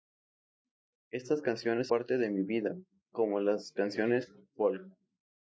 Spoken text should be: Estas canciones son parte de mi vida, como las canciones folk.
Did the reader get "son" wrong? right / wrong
wrong